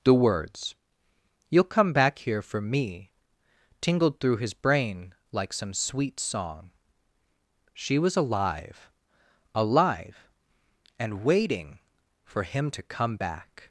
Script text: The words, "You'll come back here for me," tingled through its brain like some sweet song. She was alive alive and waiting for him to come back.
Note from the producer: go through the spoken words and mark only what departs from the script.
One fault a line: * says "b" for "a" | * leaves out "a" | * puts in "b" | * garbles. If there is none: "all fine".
* says "his" for "its"